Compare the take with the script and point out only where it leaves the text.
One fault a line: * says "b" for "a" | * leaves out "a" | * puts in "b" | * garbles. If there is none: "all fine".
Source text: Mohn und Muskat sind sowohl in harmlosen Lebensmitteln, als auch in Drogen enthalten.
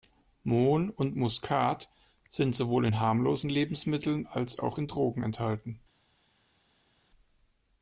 all fine